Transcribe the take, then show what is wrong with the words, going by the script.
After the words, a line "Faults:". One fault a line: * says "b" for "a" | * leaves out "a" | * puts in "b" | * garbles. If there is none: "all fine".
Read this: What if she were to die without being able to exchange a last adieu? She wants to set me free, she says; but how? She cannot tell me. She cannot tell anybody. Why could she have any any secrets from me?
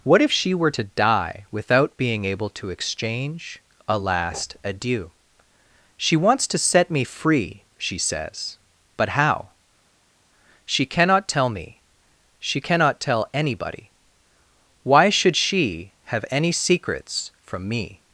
What if she were to die without being able to exchange a last adieu? She wants to set me free, she says; but how? She cannot tell me. She cannot tell anybody. Why should she have any secrets from me?
Faults:
* says "should" for "could"
* leaves out "any"